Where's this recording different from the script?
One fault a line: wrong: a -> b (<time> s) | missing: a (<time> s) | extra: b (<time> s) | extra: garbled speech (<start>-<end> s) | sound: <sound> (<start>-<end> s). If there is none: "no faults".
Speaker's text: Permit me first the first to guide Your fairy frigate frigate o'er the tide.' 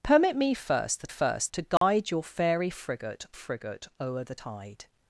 sound: dropout (1.8-1.8 s)